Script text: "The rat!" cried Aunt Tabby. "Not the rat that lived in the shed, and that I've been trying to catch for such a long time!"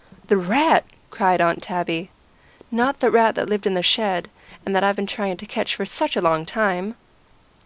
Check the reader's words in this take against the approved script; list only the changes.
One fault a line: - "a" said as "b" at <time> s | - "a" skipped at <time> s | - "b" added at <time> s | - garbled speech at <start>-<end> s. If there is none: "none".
none